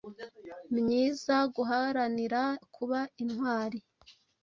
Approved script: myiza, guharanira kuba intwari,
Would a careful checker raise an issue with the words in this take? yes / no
no